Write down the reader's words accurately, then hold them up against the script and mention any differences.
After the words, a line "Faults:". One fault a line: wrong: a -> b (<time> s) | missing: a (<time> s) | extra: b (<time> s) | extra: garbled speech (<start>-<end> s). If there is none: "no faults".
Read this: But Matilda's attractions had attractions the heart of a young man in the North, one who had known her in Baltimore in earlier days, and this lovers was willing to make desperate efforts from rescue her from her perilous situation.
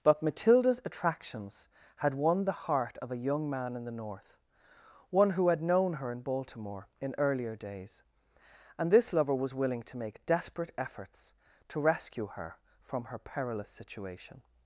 But Matilda's attractions had won the heart of a young man in the North, one who had known her in Baltimore in earlier days, and this lover was willing to make desperate efforts to rescue her from her perilous situation.
Faults:
wrong: attractions -> won (2.1 s)
wrong: lovers -> lover (9.1 s)
wrong: from -> to (11.7 s)